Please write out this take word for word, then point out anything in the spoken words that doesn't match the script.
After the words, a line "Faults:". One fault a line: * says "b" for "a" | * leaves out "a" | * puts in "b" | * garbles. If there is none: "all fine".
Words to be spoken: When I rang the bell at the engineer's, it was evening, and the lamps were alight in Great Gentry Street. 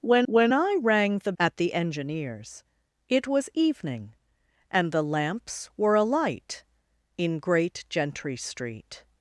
When when I rang the at the engineer's, it was evening, and the lamps were alight in Great Gentry Street.
Faults:
* puts in "when"
* leaves out "bell"